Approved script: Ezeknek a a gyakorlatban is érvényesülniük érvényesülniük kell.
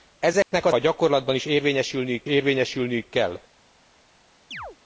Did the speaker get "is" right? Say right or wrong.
right